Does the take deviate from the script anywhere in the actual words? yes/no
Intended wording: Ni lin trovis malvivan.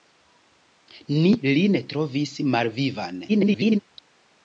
yes